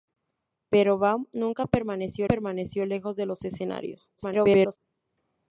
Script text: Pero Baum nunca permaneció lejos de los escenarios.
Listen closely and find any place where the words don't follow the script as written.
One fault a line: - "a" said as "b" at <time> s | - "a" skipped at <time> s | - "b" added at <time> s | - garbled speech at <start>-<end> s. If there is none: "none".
- "permaneció" added at 2.2 s
- garbled speech at 4.2-4.8 s